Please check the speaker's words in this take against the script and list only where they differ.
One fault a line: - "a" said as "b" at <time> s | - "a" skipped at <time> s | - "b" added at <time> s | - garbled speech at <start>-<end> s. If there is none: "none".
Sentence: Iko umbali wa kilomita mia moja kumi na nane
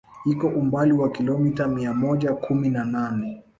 none